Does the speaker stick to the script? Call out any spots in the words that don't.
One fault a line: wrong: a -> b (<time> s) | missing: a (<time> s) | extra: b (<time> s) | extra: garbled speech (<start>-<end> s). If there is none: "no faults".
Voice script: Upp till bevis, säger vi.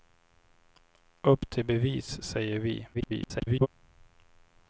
extra: garbled speech (2.9-3.7 s)